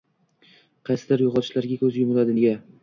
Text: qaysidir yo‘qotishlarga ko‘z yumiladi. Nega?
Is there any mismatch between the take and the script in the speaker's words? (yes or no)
no